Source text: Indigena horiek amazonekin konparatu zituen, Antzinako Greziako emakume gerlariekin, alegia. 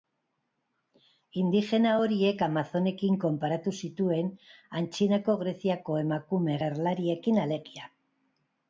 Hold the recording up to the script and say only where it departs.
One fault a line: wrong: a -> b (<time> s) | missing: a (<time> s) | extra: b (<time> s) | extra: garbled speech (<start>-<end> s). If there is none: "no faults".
no faults